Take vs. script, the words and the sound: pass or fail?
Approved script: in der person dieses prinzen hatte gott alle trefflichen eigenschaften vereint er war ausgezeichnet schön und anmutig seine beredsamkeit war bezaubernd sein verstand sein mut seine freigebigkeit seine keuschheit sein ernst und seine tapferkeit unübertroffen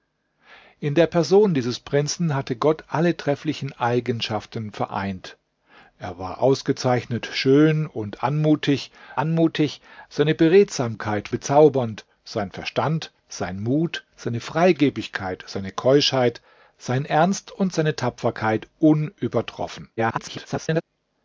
fail